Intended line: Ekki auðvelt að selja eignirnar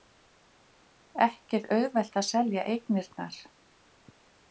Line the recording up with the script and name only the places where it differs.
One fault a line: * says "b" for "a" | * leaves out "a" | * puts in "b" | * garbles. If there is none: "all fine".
all fine